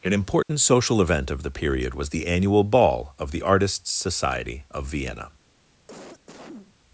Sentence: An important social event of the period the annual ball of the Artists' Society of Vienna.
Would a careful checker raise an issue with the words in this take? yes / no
yes